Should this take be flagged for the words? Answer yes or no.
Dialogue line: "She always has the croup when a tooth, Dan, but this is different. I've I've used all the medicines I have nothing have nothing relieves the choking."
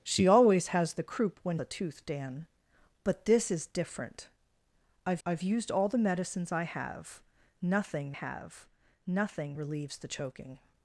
no